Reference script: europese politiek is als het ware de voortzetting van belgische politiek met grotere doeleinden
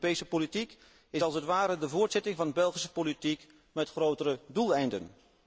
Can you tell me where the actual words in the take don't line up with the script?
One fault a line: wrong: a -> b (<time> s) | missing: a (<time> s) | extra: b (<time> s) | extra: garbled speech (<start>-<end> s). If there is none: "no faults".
no faults